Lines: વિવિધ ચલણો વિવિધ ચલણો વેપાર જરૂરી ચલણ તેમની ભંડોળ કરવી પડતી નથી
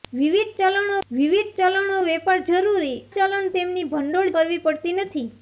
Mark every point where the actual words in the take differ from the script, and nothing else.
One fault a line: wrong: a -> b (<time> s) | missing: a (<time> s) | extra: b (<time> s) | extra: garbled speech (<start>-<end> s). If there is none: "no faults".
no faults